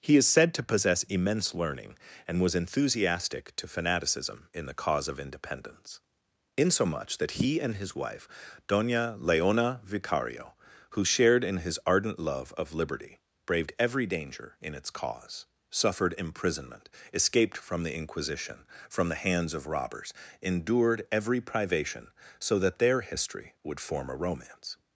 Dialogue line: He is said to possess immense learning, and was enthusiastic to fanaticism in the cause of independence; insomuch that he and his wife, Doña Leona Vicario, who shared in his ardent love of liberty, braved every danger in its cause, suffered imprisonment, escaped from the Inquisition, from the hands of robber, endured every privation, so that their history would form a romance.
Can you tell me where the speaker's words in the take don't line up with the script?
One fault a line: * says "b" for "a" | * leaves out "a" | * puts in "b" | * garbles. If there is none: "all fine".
* says "robbers" for "robber"